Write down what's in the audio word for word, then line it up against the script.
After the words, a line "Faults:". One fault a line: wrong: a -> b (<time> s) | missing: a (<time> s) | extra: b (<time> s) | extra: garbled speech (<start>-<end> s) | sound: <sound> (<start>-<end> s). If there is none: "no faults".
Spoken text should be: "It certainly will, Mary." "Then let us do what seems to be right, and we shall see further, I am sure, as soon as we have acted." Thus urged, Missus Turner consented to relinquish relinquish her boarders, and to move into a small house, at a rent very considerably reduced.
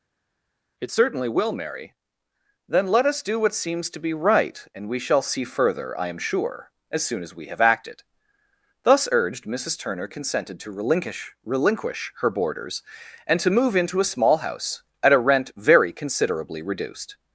"It certainly will, Mary." "Then let us do what seems to be right, and we shall see further, I am sure, as soon as we have acted." Thus urged, Missus Turner consented to relinquish relinquish her boarders, and to move into a small house, at a rent very considerably reduced.
Faults:
no faults